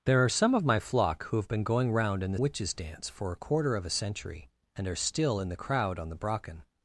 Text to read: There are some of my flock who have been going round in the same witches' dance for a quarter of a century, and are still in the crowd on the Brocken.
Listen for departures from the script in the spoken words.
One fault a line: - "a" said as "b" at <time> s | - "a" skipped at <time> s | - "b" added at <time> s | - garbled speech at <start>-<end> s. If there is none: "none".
- "same" skipped at 2.4 s